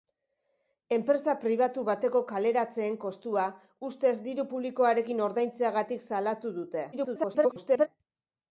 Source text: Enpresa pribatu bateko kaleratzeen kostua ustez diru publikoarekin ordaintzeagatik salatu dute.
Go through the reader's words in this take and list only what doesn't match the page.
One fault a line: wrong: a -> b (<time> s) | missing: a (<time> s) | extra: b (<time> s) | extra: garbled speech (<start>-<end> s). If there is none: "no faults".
extra: garbled speech (6.9-7.9 s)